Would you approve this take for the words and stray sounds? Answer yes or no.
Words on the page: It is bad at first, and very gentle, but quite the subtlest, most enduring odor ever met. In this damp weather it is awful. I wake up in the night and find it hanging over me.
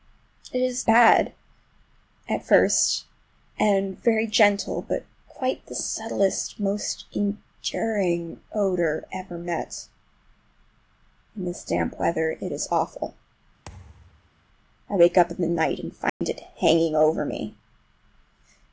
no